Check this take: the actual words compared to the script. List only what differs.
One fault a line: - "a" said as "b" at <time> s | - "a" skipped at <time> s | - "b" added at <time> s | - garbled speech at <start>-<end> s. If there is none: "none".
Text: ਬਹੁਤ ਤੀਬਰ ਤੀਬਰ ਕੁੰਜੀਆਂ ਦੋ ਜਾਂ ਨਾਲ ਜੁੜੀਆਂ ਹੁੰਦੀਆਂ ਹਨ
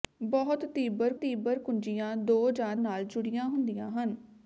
none